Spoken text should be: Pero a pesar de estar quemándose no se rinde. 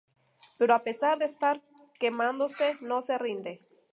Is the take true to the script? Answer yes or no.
yes